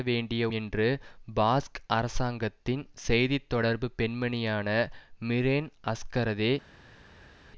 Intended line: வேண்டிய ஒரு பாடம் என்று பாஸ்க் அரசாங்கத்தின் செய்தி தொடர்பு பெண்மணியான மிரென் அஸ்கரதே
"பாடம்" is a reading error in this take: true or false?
true